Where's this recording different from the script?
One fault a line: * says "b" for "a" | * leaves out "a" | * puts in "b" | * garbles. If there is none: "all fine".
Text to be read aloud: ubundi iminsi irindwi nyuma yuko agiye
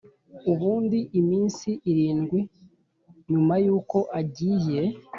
all fine